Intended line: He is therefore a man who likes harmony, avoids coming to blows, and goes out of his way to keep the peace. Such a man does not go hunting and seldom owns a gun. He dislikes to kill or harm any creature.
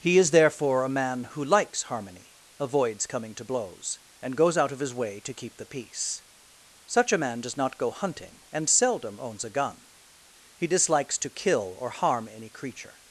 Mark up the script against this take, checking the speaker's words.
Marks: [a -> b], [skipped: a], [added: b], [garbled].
He is therefore a man who likes harmony, avoids coming to blows, and goes out of his way to keep the peace. Such a man does not go hunting and seldom owns a gun. He dislikes to kill or harm any creature.